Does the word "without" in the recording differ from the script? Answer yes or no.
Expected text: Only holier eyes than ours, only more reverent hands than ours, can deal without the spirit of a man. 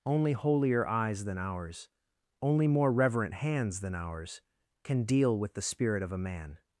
yes